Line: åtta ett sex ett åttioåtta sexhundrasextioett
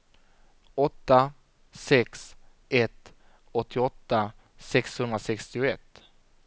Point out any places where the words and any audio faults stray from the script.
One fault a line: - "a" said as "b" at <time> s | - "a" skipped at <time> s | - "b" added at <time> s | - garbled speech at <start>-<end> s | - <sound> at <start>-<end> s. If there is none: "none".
- "ett" skipped at 1.3 s